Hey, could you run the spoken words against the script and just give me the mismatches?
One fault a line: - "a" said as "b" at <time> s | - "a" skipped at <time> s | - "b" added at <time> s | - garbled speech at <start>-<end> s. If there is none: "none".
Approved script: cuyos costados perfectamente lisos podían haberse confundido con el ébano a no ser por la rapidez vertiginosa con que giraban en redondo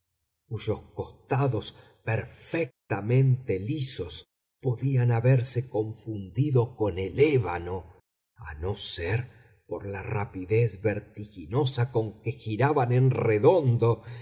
none